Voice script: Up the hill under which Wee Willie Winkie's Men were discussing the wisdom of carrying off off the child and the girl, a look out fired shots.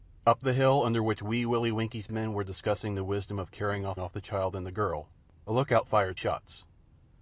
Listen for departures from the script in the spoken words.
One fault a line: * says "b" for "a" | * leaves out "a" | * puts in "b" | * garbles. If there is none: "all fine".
all fine